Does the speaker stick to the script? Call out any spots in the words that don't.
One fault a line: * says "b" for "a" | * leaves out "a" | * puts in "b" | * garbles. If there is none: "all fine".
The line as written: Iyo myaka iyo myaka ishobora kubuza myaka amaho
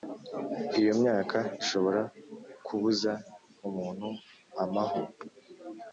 * leaves out "iyo myaka"
* says "umuntu" for "myaka"